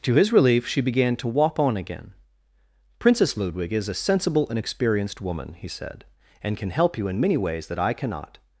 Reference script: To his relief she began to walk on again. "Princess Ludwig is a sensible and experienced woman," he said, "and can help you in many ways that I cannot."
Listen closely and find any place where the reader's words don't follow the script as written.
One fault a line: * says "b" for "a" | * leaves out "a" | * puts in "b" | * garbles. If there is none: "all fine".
all fine